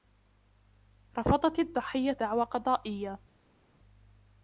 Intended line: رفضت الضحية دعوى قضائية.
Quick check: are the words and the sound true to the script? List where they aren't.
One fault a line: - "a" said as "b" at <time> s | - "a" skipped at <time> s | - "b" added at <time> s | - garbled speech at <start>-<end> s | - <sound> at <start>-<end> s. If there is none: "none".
none